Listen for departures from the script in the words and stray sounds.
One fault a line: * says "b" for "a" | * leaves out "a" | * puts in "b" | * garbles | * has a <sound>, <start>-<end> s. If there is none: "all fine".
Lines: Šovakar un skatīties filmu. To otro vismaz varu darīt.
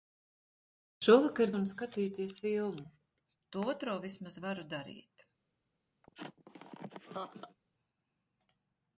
* has a laugh, 6.0-7.6 s